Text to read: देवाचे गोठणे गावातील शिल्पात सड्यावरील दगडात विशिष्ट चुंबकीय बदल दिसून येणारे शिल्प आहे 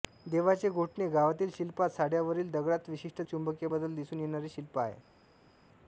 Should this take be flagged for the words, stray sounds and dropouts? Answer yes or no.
no